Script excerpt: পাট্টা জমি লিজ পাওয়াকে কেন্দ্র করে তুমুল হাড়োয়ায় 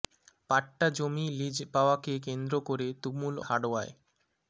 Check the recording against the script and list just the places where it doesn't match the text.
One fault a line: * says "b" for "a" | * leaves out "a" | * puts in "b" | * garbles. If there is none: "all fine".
all fine